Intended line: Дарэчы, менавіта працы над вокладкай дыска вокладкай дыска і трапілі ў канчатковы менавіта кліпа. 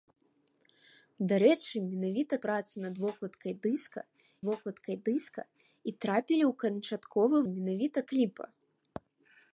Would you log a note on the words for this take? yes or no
no